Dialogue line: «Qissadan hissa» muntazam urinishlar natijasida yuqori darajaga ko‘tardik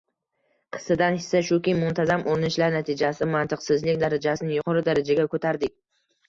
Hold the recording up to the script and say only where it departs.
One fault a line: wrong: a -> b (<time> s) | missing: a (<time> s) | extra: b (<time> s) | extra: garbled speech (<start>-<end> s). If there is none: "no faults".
extra: shuki (1.5 s)
extra: mantiqsizlik darajasini (3.4 s)